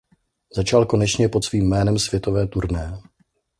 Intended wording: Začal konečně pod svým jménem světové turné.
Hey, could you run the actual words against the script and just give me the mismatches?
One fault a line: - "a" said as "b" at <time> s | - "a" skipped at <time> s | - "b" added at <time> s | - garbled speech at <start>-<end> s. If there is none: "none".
none